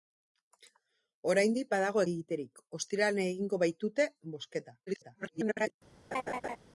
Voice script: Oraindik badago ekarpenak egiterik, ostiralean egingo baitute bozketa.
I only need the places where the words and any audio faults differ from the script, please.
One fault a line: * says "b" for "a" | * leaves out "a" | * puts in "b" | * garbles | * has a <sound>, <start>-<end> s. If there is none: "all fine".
* leaves out "ekarpenak"
* garbles
* has a laugh, 6.1-6.6 s